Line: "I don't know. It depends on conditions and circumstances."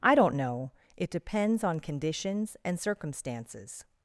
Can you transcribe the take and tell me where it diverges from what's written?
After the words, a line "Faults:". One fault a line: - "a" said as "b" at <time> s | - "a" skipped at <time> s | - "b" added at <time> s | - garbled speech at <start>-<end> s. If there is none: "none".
"I don't know. It depends on conditions and circumstances."
Faults:
none